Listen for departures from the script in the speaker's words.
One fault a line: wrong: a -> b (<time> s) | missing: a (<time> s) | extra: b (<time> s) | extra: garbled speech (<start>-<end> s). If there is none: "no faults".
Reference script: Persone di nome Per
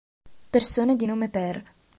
no faults